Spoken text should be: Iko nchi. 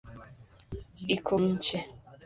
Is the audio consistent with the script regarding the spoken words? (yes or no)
yes